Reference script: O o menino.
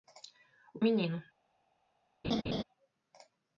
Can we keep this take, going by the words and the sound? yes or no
no